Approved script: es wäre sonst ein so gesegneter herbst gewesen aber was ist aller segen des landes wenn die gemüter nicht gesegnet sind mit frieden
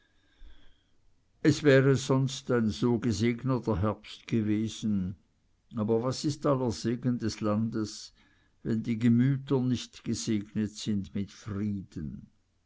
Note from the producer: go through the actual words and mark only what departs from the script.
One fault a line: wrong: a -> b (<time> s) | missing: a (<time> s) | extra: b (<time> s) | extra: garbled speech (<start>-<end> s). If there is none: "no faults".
no faults